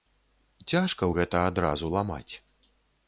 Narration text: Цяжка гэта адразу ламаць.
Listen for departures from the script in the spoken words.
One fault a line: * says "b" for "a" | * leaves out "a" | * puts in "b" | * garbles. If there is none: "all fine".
all fine